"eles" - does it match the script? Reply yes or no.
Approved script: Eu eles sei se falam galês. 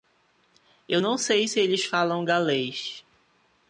no